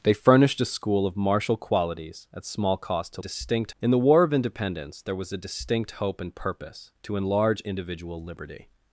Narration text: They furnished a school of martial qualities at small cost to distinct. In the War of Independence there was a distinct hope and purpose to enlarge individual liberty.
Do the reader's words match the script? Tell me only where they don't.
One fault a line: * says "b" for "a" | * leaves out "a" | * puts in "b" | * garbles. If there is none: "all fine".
all fine